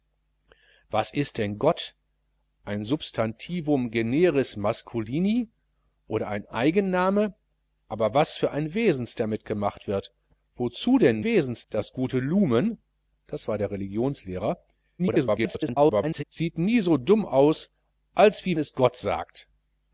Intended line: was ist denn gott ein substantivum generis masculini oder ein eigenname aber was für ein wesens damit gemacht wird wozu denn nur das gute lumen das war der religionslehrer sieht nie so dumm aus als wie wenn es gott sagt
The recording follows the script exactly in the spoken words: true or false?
false